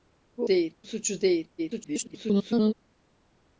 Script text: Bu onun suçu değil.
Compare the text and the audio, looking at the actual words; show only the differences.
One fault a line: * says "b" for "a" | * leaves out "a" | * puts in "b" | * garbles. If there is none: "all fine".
* says "değil" for "onun"
* garbles